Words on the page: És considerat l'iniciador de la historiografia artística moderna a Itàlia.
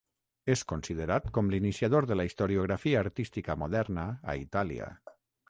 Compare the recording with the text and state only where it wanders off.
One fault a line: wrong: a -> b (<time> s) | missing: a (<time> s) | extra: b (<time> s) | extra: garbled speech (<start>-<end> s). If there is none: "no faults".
extra: com (1.4 s)